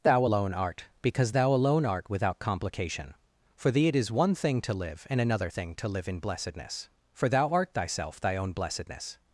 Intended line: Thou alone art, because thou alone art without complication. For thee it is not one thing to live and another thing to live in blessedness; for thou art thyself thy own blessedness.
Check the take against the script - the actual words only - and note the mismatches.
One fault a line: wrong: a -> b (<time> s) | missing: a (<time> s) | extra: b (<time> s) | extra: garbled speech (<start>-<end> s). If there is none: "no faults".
missing: not (4.1 s)